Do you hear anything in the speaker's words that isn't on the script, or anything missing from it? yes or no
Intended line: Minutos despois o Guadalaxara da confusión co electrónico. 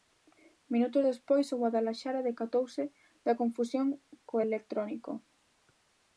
yes